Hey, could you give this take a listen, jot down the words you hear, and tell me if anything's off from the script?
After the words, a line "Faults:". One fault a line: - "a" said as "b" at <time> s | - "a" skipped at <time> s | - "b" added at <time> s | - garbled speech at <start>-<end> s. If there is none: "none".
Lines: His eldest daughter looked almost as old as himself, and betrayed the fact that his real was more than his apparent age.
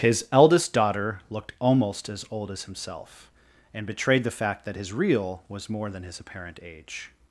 His eldest daughter looked almost as old as himself, and betrayed the fact that his real was more than his apparent age.
Faults:
none